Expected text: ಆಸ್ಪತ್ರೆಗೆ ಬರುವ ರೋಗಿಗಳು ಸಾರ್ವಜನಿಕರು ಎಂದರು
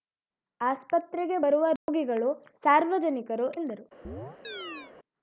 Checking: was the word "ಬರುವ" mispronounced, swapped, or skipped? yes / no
no